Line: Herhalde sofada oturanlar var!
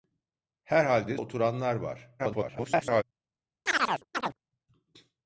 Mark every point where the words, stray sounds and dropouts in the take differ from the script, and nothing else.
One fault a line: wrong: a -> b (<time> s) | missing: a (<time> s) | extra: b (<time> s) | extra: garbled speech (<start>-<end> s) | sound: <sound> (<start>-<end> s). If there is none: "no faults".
missing: sofada (1.2 s)
extra: garbled speech (2.2-3.0 s)
sound: chirp (3.7-4.4 s)